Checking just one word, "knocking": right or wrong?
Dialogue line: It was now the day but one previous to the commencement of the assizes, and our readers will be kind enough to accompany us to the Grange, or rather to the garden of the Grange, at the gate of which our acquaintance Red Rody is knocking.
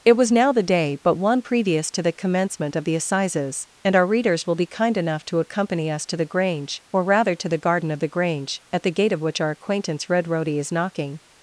right